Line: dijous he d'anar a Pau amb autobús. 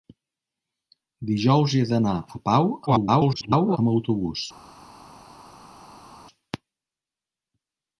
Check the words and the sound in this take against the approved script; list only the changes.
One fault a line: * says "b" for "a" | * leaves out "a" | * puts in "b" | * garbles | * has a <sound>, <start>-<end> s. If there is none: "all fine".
* garbles